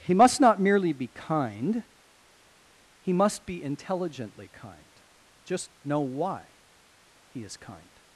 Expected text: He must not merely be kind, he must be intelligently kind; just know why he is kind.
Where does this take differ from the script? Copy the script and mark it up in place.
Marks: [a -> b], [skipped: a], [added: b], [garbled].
He must not merely be kind, he must be intelligently kind; just know why he is kind.